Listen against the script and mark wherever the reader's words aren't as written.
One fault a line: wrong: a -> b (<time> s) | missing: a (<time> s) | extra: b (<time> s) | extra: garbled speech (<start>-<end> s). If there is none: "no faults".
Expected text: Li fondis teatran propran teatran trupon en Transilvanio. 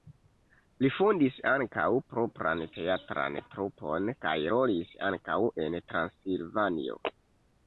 wrong: teatran -> ankaŭ (1.5 s)
extra: kaj rolis ankaŭ (4.3 s)